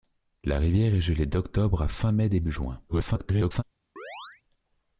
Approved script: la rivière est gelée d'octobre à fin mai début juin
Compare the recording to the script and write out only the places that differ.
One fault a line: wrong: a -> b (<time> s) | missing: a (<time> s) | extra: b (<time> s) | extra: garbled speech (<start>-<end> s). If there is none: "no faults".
extra: garbled speech (2.9-3.6 s)